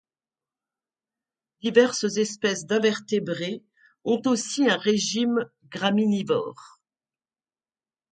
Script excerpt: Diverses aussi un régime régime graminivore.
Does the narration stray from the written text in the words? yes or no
yes